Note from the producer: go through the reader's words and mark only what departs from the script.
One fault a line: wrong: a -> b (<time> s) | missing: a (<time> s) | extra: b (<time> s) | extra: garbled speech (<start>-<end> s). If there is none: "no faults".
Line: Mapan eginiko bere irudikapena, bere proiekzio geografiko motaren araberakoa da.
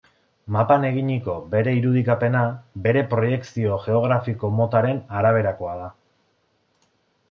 no faults